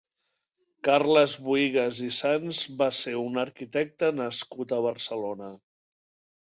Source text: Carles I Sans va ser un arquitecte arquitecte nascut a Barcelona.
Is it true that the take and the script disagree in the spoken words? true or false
true